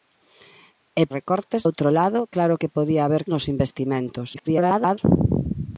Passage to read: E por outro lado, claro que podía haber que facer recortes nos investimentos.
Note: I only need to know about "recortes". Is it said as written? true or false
false